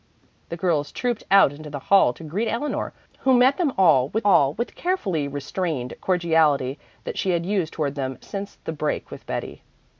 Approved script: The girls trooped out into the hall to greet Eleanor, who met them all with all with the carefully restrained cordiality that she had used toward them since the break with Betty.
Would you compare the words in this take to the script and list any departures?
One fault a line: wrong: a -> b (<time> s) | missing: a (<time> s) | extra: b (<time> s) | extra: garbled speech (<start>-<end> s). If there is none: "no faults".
no faults